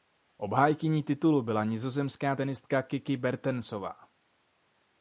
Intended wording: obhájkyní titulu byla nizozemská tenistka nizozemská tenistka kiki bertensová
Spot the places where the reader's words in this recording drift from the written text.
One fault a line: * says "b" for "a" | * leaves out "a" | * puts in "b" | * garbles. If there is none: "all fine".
* leaves out "nizozemská tenistka"